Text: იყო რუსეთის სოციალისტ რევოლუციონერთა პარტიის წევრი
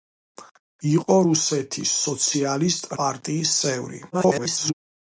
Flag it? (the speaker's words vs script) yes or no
yes